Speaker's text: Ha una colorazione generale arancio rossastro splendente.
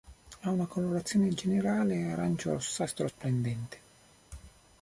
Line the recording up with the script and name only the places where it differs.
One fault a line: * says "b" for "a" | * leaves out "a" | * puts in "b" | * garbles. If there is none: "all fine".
all fine